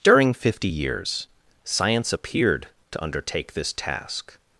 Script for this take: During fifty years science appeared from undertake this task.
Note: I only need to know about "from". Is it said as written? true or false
false